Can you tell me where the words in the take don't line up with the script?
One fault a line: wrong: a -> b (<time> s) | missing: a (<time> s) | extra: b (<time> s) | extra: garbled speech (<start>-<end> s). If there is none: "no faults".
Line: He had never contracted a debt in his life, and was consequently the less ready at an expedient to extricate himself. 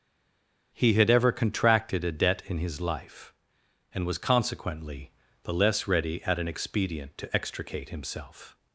wrong: never -> ever (1.1 s)